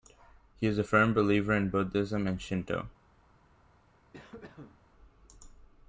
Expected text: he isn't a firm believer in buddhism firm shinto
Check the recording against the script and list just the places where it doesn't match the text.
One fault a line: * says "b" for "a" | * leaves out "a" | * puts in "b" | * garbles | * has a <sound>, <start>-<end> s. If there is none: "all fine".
* says "is" for "isn't"
* says "and" for "firm"
* has a cough, 4.1-4.9 s